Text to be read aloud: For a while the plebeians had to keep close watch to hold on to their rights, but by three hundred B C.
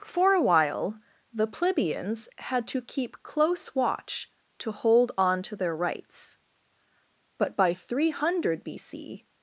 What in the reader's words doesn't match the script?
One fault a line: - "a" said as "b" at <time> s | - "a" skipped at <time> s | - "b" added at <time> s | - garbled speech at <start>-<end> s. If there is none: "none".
none